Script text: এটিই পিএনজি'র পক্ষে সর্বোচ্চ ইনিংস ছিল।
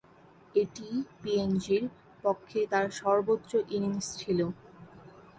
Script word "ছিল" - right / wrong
right